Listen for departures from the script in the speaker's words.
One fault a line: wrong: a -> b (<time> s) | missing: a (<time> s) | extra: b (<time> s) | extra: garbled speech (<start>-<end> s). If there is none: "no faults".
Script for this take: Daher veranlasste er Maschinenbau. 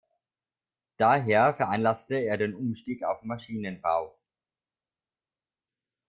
extra: den Umstieg auf (2.4 s)